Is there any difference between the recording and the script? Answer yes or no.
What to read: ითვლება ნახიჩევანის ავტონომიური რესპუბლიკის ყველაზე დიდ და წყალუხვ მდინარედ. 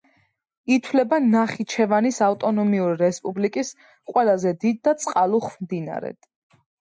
no